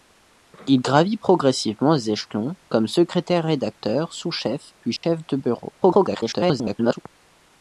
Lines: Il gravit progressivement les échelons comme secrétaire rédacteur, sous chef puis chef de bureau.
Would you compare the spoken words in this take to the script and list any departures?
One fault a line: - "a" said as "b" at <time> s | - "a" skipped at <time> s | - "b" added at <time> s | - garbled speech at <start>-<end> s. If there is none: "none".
- garbled speech at 5.8-7.0 s